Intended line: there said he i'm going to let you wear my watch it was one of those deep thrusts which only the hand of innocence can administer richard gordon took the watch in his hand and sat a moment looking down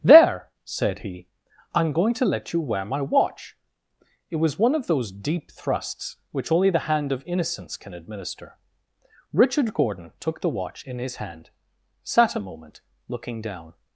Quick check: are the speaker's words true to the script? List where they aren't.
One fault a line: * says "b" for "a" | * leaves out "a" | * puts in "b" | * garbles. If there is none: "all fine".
* leaves out "and"